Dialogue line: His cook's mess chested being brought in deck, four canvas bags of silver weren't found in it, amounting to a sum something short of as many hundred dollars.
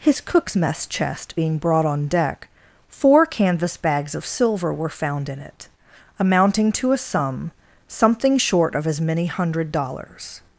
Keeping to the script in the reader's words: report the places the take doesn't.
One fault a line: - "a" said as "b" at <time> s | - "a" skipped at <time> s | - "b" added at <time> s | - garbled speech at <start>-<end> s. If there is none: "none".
- "chested" said as "chest" at 0.9 s
- "in" said as "on" at 1.9 s
- "weren't" said as "were" at 4.7 s